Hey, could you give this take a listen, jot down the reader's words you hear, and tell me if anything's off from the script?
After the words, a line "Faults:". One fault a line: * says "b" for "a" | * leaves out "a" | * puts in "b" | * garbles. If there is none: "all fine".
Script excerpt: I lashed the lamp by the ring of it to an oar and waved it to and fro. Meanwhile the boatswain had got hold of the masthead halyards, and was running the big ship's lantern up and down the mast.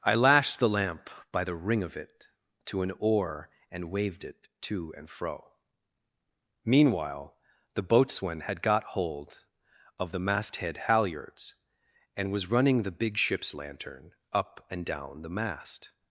I lashed the lamp by the ring of it to an oar and waved it to and fro. Meanwhile the boatswain had got hold of the masthead halyards, and was running the big ship's lantern up and down the mast.
Faults:
all fine